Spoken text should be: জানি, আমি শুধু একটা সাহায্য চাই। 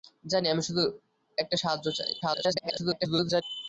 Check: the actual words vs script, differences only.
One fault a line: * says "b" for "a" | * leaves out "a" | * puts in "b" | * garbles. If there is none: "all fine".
* garbles